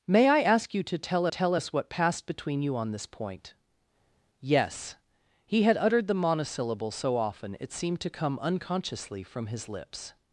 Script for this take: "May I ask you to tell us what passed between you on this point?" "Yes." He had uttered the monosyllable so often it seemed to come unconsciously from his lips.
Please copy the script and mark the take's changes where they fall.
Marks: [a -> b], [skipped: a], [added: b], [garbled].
"May I ask you to tell [added: tell] us what passed between you on this point?" "Yes." He had uttered the monosyllable so often it seemed to come unconsciously from his lips.